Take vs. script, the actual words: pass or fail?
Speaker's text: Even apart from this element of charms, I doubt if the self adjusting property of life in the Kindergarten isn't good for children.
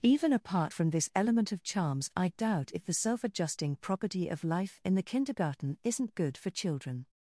pass